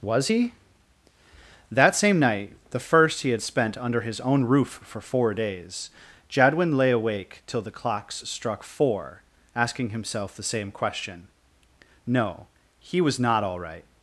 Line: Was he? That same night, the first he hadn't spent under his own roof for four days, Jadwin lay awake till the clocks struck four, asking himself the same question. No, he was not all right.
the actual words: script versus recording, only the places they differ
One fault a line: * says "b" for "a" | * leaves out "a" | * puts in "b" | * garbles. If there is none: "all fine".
* says "had" for "hadn't"